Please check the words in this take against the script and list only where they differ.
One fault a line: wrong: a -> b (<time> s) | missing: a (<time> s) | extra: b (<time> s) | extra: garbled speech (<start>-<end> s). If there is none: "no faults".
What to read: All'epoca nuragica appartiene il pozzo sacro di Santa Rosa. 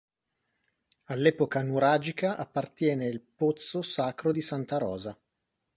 no faults